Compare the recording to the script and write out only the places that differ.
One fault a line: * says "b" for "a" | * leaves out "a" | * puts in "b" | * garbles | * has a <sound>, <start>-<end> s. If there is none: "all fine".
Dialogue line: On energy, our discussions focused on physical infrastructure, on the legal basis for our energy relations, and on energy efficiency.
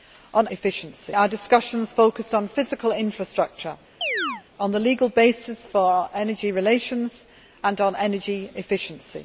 * says "efficiency" for "energy"
* has a chirp, 4.0-4.4 s